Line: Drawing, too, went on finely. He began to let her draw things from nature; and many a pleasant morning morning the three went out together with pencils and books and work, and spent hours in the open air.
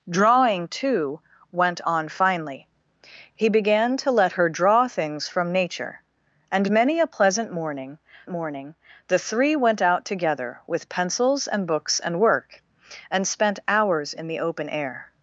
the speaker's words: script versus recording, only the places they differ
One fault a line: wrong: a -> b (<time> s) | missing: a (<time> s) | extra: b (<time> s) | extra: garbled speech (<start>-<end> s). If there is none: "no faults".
no faults